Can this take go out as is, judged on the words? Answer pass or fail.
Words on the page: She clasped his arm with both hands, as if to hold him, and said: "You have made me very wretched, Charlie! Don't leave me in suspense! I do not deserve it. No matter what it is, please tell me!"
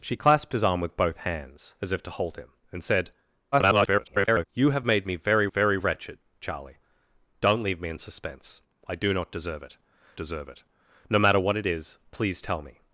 fail